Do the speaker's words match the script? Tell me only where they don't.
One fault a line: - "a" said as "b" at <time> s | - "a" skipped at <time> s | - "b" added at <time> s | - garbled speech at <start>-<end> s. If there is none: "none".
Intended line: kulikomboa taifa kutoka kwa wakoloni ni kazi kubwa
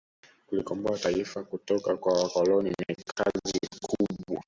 none